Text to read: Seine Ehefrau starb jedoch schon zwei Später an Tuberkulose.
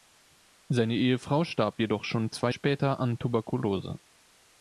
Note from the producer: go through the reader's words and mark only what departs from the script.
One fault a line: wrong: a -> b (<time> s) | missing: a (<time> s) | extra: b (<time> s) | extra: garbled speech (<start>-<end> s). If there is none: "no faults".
no faults